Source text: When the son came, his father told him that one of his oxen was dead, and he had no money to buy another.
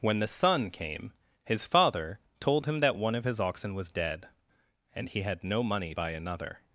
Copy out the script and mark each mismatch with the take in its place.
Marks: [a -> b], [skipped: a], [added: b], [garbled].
When the son came, his father told him that one of his oxen was dead, and he had no money [skipped: to] buy another.